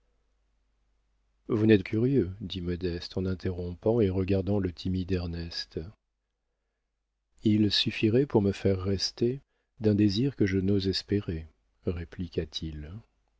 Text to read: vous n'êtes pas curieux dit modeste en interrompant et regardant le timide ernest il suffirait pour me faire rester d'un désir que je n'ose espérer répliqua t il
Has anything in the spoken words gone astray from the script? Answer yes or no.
yes